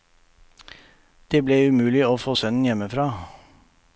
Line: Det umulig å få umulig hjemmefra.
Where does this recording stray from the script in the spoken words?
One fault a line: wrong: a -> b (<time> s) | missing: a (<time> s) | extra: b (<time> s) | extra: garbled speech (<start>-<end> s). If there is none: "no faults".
extra: ble (1.5 s)
wrong: umulig -> sønnen (2.3 s)